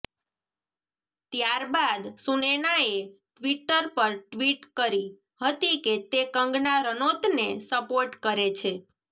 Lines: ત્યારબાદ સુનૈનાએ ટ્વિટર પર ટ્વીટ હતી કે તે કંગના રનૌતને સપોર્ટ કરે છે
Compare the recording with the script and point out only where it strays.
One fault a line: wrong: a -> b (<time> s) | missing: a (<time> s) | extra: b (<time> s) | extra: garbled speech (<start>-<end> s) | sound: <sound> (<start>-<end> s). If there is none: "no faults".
extra: કરી (4.8 s)